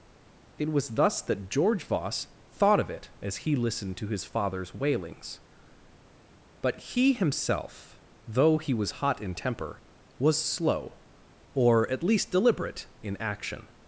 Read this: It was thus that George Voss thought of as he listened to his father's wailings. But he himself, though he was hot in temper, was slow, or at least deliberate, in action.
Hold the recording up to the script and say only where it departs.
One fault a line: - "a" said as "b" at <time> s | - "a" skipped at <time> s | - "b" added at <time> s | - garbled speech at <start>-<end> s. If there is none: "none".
- "it" added at 2.9 s